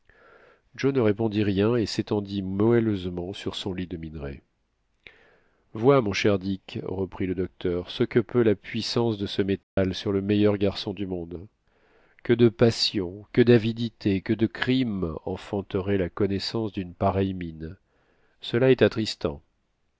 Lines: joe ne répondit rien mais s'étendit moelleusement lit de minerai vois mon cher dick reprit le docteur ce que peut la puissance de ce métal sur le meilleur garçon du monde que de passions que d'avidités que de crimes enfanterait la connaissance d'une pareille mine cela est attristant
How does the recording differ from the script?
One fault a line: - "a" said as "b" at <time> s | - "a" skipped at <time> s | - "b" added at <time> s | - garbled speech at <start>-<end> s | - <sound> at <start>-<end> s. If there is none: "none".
- "mais" said as "et" at 1.8 s
- "sur son" added at 3.3 s
- dropout at 9.6-9.8 s